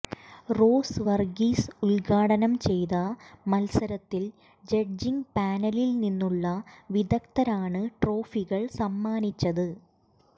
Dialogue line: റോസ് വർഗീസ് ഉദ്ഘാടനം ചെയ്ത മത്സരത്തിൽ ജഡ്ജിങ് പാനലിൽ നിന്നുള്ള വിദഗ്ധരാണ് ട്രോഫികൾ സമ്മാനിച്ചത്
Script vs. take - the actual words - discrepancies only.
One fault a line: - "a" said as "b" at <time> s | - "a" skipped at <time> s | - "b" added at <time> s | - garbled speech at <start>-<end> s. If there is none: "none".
none